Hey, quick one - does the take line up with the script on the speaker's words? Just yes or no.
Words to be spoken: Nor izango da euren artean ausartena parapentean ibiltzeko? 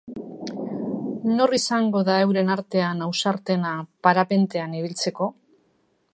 yes